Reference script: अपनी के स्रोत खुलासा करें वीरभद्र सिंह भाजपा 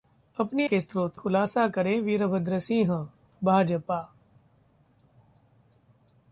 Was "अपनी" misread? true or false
false